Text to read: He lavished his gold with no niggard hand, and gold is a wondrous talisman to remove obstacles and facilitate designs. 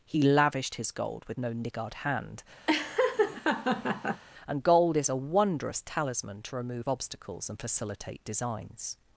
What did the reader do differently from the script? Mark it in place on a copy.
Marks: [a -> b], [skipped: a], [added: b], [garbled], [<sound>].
He lavished his gold with no niggard hand, [laugh] and gold is a wondrous talisman to remove obstacles and facilitate designs.